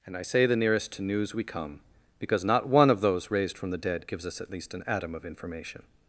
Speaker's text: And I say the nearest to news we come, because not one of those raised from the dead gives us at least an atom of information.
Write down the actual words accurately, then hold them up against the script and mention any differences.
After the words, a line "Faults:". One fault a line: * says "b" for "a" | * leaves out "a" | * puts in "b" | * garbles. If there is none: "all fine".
And I say the nearest to news we come, because not one of those raised from the dead gives us at least an atom of information.
Faults:
all fine